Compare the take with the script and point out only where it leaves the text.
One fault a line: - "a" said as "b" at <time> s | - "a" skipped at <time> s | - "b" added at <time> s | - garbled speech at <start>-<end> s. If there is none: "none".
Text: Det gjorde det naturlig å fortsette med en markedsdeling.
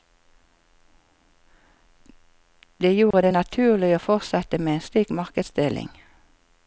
- "slik" added at 4.8 s